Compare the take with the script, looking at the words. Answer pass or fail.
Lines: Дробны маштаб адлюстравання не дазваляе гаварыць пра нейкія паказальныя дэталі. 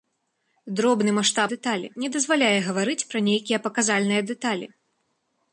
fail